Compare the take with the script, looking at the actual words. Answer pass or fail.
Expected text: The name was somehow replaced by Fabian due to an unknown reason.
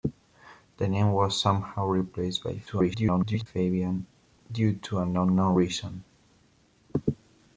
fail